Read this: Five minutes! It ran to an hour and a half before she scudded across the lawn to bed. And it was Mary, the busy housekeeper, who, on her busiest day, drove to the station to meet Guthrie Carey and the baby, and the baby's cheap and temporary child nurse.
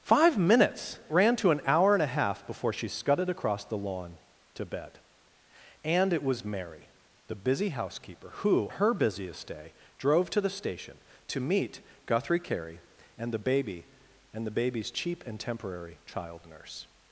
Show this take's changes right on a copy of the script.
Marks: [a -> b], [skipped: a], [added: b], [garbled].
Five minutes! [skipped: It] ran to an hour and a half before she scudded across the lawn to bed. And it was Mary, the busy housekeeper, who, [skipped: on] her busiest day, drove to the station to meet Guthrie Carey and the baby, and the baby's cheap and temporary child nurse.